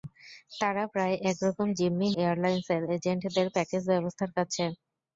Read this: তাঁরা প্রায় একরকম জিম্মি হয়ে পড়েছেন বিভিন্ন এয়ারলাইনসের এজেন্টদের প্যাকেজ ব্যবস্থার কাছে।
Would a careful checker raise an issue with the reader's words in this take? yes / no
yes